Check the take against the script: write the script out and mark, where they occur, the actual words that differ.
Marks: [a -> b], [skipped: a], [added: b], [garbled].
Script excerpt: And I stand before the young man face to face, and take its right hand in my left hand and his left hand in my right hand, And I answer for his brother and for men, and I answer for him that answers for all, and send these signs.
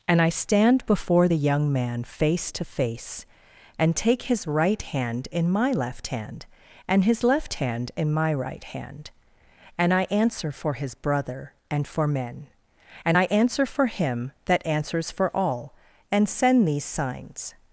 And I stand before the young man face to face, and take [its -> his] right hand in my left hand and his left hand in my right hand, And I answer for his brother and for men, and I answer for him that answers for all, and send these signs.